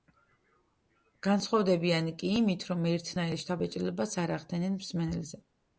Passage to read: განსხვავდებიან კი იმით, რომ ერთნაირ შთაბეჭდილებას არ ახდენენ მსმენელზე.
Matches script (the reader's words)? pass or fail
pass